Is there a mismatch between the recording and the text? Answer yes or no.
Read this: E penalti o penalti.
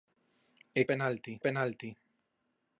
no